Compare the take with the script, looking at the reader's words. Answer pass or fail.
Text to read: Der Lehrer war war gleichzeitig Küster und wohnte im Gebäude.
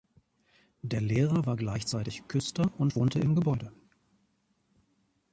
fail